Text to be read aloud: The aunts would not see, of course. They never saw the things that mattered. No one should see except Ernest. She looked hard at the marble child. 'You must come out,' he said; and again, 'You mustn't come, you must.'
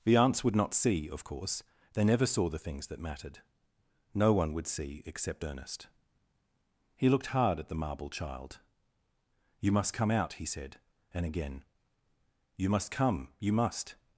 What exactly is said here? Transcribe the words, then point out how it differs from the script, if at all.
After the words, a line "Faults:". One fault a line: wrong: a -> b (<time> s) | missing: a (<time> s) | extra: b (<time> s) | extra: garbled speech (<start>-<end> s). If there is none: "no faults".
The aunts would not see, of course. They never saw the things that mattered. No one would see except Ernest. He looked hard at the marble child. 'You must come out,' he said; and again, 'You must come, you must.'
Faults:
wrong: should -> would (4.5 s)
wrong: She -> He (7.0 s)
wrong: mustn't -> must (12.7 s)